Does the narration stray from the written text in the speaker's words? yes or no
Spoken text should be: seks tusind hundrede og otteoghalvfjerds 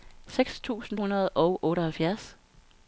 no